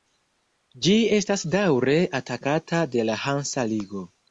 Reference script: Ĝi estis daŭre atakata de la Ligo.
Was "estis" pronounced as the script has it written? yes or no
no